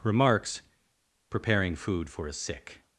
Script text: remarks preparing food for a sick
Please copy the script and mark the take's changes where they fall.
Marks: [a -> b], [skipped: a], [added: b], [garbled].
remarks preparing food for a sick